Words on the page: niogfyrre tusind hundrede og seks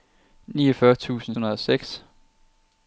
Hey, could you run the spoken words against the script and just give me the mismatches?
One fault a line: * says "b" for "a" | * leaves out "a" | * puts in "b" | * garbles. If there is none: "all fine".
all fine